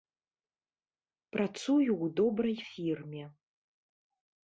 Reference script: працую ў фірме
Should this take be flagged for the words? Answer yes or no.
yes